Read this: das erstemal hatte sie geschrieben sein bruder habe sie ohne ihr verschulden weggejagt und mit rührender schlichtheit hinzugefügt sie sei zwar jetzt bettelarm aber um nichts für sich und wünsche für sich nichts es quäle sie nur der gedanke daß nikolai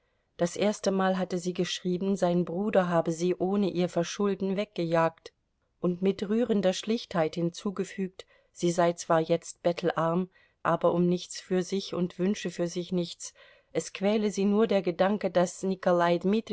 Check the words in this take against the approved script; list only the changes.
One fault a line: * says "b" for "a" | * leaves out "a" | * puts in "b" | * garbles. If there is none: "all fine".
all fine